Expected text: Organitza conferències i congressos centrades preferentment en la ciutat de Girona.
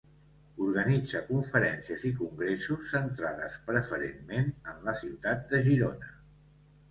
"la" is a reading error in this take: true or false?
false